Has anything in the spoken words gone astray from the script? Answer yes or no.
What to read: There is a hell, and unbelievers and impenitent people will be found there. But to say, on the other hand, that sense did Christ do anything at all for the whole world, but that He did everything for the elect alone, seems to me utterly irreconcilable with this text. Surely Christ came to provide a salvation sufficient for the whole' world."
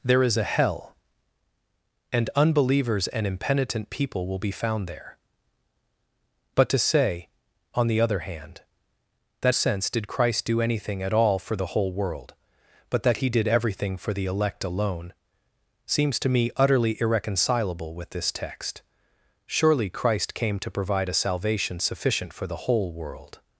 no